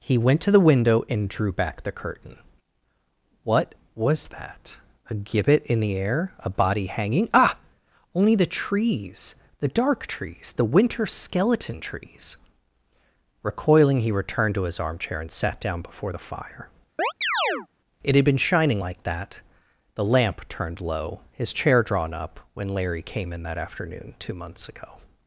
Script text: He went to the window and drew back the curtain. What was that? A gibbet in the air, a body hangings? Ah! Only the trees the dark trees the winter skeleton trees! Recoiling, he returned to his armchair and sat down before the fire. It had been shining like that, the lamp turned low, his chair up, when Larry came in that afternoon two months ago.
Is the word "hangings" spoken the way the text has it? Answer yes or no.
no